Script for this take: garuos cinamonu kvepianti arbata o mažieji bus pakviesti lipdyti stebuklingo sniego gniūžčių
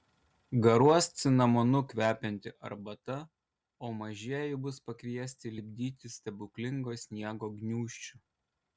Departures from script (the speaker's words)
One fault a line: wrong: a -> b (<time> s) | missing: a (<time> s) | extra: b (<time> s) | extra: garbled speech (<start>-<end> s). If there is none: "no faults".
no faults